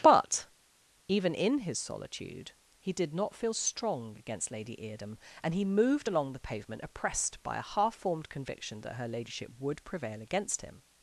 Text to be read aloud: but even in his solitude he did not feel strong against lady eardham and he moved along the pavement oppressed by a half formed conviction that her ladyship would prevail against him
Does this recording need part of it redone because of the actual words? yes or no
no